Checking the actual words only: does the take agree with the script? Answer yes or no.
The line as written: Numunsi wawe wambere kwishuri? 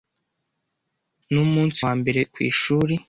no